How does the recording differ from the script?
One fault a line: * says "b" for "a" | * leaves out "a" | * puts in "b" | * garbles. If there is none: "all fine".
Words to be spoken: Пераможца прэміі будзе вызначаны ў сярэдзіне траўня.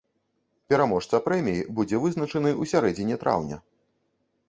all fine